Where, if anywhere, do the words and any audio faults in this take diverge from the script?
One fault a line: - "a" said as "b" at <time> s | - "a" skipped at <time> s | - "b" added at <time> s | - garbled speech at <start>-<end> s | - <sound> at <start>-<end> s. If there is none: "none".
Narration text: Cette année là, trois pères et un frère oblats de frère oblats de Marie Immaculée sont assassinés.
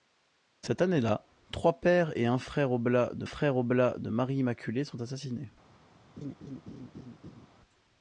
- laugh at 6.2-7.5 s